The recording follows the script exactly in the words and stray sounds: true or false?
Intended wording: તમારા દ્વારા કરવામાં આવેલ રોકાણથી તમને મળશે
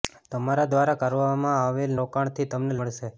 true